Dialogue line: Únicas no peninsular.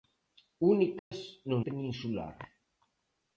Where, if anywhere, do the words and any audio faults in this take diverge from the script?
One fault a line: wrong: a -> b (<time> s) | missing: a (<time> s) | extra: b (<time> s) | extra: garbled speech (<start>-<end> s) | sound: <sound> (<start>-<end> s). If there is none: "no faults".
sound: dropout (1.0-1.1 s)